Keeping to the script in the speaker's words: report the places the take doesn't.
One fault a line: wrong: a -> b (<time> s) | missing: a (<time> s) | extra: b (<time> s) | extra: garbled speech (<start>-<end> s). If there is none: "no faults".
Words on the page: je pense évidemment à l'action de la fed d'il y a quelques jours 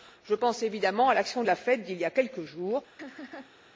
no faults